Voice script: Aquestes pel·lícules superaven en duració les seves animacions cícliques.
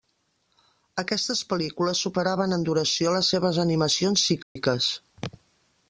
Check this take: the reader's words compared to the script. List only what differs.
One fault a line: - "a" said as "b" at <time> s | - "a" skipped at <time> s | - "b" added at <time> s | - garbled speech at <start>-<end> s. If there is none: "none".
none